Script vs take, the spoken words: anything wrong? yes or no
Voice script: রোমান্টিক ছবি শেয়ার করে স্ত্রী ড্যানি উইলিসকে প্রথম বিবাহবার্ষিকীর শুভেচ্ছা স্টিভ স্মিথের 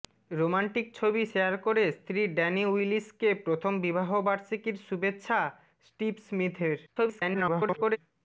yes